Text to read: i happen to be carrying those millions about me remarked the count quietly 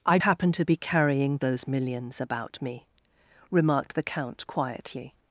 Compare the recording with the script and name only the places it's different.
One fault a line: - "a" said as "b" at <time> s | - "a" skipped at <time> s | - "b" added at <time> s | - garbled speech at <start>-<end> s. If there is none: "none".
none